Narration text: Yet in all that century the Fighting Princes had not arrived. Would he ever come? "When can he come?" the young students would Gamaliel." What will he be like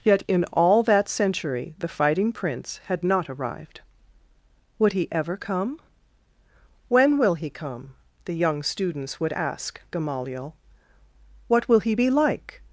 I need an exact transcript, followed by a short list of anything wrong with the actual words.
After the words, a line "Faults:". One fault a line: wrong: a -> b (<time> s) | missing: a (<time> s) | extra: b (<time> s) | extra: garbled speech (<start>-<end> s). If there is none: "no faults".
Yet in all that century the Fighting Prince had not arrived. Would he ever come? "When will he come?" the young students would ask Gamaliel." What will he be like
Faults:
wrong: Princes -> Prince (2.3 s)
wrong: can -> will (7.2 s)
extra: ask (9.3 s)